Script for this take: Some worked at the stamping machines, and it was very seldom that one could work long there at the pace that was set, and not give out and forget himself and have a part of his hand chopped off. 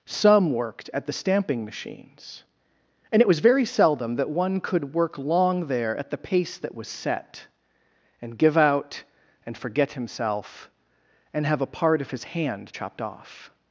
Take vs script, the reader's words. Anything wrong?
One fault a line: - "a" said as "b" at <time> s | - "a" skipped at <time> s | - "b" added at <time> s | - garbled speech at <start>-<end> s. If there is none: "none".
- "not" skipped at 8.4 s